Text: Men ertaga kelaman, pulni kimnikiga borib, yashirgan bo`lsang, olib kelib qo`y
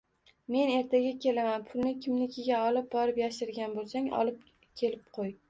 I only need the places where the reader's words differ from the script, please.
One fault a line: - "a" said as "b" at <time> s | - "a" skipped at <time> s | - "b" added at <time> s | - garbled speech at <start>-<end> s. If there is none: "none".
- "olib" added at 2.7 s